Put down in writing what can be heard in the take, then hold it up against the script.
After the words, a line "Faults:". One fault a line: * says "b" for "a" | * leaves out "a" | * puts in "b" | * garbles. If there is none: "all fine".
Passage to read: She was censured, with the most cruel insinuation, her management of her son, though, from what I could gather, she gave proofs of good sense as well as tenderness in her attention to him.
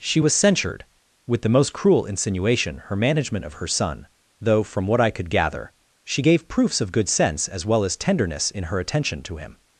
She was censured, with the most cruel insinuation, her management of her son, though, from what I could gather, she gave proofs of good sense as well as tenderness in her attention to him.
Faults:
all fine